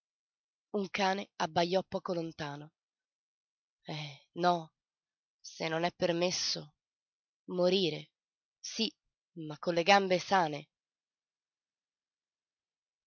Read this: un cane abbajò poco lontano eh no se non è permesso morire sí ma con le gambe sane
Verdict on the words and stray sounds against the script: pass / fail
pass